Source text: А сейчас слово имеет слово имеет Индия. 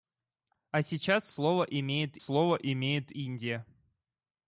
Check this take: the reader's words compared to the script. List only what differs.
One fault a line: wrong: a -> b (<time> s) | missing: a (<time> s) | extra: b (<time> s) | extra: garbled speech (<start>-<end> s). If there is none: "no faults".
no faults